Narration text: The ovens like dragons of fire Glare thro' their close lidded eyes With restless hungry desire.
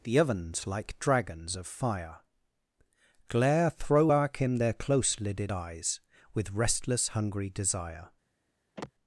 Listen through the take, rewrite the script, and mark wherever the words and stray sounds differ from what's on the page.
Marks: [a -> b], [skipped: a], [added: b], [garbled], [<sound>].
The ovens like dragons of fire Glare [thro' -> throw arc him] their close lidded eyes With restless hungry desire. [sigh]